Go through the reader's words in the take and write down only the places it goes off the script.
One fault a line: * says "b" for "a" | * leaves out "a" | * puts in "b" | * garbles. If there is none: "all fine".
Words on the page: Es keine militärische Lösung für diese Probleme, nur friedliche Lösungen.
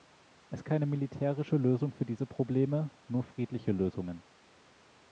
all fine